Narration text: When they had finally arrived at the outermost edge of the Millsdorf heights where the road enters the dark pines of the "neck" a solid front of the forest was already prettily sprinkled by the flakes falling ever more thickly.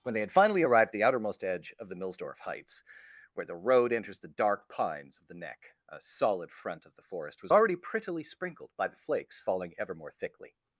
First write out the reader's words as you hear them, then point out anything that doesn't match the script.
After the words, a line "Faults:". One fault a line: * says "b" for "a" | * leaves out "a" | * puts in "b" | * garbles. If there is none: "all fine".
When they had finally arrived at the outermost edge of the Millsdorf heights where the road enters the dark pines of the "neck" a solid front of the forest was already prettily sprinkled by the flakes falling ever more thickly.
Faults:
all fine